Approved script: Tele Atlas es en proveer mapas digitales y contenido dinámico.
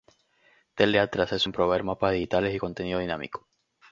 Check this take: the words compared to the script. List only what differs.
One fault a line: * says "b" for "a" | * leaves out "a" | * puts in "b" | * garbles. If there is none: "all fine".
all fine